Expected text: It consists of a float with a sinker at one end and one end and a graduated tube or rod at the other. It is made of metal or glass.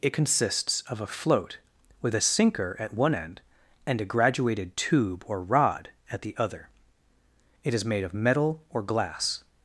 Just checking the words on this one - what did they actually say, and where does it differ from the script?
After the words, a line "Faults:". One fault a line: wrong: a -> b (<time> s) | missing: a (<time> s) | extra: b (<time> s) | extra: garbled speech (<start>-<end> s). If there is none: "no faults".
It consists of a float with a sinker at one end and a graduated tube or rod at the other. It is made of metal or glass.
Faults:
missing: one end and (4.0 s)